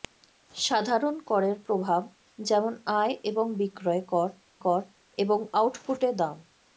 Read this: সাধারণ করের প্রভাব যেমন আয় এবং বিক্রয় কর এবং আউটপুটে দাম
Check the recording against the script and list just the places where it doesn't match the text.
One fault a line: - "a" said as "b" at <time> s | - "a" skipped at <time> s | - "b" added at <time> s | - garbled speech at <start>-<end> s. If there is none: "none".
- "কর" added at 4.6 s